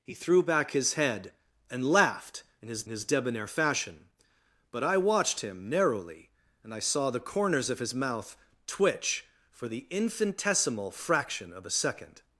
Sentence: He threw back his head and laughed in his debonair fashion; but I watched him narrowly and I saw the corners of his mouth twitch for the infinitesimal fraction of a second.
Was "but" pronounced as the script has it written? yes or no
yes